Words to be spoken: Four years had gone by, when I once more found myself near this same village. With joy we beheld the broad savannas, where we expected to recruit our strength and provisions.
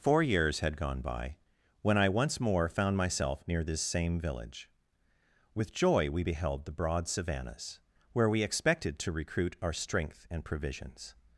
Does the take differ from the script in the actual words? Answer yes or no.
no